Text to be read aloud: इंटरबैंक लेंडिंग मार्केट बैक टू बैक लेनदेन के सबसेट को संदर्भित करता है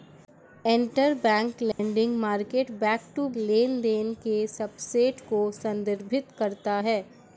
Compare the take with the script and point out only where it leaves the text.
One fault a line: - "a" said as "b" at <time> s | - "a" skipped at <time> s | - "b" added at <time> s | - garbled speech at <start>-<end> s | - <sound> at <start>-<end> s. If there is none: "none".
- dropout at 1.7-1.8 s
- "बैक" skipped at 3.3 s